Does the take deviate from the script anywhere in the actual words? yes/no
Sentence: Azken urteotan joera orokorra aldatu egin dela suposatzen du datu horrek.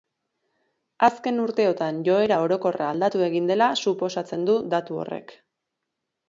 no